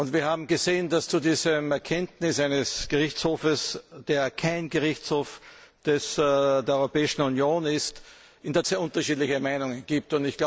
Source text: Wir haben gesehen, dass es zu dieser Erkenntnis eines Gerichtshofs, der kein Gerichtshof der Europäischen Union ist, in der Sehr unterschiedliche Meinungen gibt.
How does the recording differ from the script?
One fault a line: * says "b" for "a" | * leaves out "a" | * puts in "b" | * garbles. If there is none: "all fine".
all fine